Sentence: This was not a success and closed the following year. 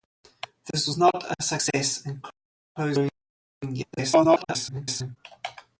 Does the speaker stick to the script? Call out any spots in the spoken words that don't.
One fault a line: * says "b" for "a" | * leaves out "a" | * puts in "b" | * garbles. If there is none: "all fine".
* garbles